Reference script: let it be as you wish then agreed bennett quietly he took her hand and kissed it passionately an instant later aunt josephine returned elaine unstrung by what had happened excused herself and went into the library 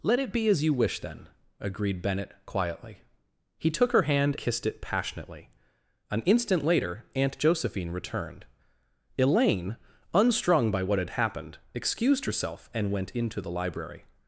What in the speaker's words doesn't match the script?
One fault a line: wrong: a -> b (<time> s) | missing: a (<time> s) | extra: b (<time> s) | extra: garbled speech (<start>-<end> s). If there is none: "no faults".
missing: and (4.3 s)